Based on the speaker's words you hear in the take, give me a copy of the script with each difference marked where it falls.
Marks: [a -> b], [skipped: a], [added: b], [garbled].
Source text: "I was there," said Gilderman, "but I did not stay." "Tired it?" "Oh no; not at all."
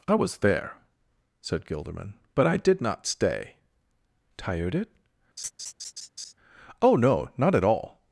"I was there," said Gilderman, "but I did not stay." "Tired it?" "Oh no; not at all."